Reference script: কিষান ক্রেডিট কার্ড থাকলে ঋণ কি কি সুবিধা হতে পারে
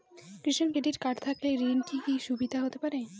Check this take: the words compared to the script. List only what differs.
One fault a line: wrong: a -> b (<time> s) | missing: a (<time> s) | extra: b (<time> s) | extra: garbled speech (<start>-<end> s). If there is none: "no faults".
no faults